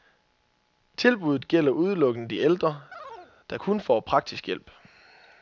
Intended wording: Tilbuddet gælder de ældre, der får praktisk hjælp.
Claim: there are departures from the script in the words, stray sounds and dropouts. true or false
true